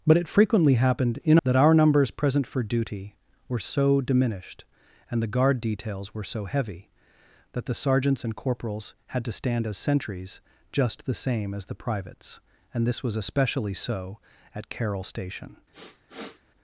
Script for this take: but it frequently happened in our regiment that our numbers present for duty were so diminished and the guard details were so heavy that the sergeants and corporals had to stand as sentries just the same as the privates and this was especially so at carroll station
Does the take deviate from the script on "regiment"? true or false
true